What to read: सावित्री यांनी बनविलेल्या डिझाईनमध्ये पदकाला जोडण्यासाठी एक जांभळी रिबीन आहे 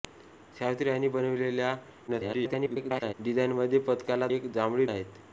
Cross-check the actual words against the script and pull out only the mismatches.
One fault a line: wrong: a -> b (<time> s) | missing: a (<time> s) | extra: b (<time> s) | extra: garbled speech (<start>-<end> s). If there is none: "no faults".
extra: garbled speech (2.1-3.1 s)
missing: जोडण्यासाठी (4.3 s)
missing: रिबीन (4.9 s)